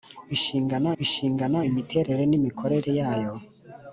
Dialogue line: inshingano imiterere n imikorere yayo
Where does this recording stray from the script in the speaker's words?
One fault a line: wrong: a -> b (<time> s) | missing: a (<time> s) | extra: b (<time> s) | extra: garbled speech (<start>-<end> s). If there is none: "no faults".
extra: inshingano (1.0 s)